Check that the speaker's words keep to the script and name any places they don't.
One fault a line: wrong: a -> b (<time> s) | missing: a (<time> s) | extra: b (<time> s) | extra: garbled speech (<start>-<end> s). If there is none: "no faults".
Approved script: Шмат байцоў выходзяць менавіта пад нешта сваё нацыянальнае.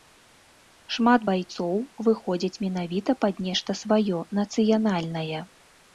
no faults